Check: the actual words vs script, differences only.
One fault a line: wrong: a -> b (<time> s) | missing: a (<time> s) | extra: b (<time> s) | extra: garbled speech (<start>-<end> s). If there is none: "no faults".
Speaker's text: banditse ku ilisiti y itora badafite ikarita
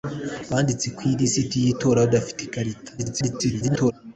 extra: garbled speech (3.0-3.9 s)